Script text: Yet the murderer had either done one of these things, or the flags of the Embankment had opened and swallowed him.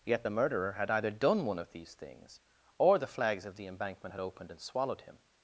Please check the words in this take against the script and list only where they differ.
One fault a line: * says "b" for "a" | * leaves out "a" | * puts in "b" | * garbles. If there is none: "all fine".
all fine